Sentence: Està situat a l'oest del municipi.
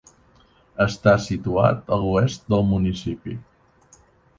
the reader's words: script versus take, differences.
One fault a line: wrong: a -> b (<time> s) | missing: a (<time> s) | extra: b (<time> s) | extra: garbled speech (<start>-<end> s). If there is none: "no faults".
no faults